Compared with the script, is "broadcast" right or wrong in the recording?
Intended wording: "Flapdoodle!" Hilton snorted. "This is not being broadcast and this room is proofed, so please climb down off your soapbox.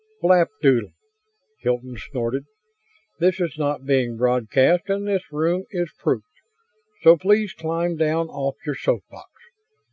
right